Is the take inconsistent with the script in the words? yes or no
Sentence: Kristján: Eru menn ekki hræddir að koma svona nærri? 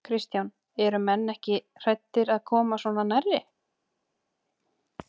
no